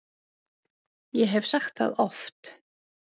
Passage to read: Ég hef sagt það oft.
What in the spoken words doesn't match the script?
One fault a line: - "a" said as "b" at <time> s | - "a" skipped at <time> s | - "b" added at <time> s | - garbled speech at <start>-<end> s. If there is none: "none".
none